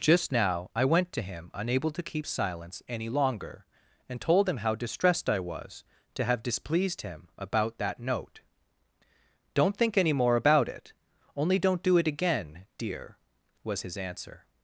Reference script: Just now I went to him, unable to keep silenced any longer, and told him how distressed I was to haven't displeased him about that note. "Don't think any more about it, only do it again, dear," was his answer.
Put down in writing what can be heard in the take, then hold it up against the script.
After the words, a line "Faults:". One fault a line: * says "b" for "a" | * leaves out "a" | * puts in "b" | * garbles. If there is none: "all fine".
Just now I went to him, unable to keep silence any longer, and told him how distressed I was to have displeased him about that note. "Don't think any more about it, only don't do it again, dear," was his answer.
Faults:
* says "silence" for "silenced"
* says "have" for "haven't"
* puts in "don't"